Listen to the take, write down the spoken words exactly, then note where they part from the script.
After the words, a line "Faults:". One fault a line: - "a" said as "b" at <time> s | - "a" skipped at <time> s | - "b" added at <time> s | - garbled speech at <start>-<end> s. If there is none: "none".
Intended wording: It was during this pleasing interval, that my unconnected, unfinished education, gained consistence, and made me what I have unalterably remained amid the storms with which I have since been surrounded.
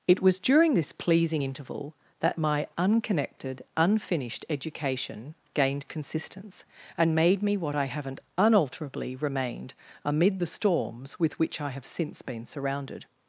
It was during this pleasing interval, that my unconnected, unfinished education, gained consistence, and made me what I haven't unalterably remained amid the storms with which I have since been surrounded.
Faults:
- "have" said as "haven't" at 7.8 s